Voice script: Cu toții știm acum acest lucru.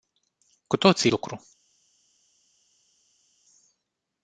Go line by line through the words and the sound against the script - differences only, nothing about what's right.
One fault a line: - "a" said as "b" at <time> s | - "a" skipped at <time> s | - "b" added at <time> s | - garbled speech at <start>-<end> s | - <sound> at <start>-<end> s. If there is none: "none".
- "știm acum acest" skipped at 1.1 s